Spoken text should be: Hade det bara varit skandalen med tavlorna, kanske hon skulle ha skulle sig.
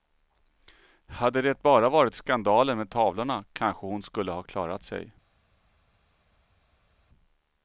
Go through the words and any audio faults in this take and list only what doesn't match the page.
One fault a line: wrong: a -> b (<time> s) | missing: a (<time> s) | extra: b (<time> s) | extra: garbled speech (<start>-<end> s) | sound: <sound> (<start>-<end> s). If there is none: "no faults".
wrong: skulle -> klarat (4.4 s)